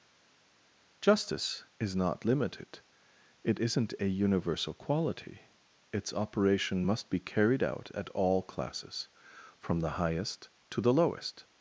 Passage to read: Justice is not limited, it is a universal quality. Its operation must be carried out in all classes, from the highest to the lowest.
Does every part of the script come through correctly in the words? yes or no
no